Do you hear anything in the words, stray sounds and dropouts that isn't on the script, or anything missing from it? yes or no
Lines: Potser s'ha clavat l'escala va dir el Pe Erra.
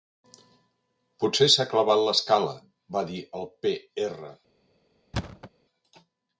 yes